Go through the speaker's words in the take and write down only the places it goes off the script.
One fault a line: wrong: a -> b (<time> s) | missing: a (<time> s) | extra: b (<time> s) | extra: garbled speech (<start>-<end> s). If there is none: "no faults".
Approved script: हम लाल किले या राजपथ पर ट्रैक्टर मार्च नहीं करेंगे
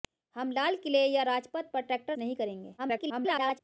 missing: मार्च (2.2 s)
extra: garbled speech (2.8-3.6 s)